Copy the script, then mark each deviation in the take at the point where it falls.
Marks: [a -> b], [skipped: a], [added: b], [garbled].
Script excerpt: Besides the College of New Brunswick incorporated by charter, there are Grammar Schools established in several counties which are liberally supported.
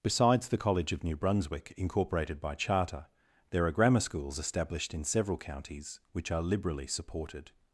Besides the College of New Brunswick incorporated by charter, there are Grammar Schools established in several counties which are liberally supported.